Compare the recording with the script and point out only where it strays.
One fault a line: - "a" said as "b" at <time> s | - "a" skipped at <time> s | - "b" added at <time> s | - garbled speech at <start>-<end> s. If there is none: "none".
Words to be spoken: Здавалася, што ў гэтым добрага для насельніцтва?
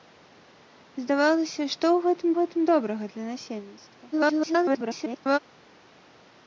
- "гэтым" added at 2.4 s
- garbled speech at 4.1-5.4 s